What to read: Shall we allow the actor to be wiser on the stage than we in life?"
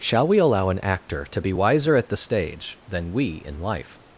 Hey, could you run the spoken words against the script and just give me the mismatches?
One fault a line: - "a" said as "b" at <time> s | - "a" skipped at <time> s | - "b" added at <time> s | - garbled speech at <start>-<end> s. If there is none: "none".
- "the" said as "an" at 0.7 s
- "on" said as "at" at 2.0 s